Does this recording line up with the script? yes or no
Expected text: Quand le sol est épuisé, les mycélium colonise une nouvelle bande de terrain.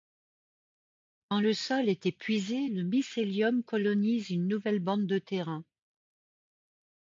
no